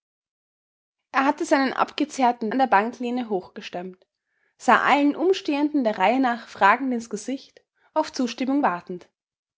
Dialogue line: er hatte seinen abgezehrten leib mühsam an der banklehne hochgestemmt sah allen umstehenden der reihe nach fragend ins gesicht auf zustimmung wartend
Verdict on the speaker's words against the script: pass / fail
fail